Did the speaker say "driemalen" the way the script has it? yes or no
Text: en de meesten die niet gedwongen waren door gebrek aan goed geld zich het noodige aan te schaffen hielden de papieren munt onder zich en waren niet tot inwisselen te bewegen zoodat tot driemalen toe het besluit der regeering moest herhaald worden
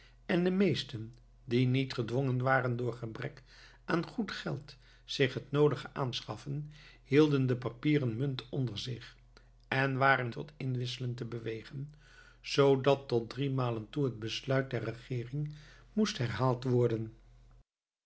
yes